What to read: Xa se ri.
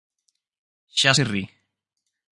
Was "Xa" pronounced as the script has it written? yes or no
yes